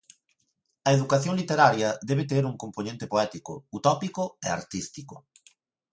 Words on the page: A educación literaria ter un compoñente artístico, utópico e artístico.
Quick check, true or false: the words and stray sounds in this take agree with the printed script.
false